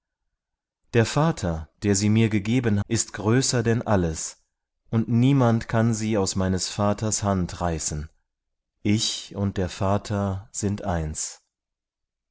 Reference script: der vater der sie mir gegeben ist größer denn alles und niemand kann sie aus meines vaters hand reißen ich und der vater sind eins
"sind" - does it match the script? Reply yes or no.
yes